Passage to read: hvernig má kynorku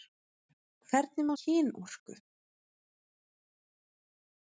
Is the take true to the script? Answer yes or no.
yes